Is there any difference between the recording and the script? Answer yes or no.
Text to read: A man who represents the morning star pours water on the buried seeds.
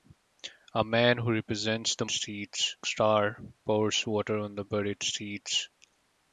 yes